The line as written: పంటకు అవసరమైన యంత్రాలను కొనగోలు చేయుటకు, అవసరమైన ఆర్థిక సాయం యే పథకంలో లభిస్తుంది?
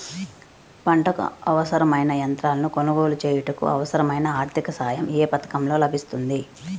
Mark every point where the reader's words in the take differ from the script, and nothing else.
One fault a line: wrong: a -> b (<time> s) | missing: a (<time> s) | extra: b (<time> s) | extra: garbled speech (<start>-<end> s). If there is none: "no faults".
no faults